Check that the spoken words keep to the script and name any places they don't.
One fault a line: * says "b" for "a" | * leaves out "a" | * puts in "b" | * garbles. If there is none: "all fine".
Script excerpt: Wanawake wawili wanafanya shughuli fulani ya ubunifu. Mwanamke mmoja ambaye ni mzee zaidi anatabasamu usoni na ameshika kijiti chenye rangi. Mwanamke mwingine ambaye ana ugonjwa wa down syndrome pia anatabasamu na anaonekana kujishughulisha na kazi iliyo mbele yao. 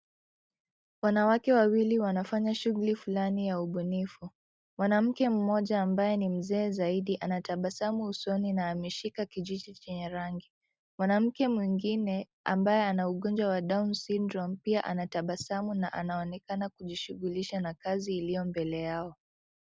all fine